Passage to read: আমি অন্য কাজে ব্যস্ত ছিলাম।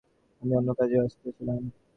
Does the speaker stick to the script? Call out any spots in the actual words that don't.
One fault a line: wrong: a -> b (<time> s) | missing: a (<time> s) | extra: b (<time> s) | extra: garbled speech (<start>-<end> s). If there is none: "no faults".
no faults